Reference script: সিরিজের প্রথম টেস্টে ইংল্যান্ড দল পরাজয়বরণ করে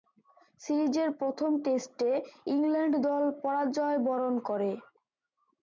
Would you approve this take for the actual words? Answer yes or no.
yes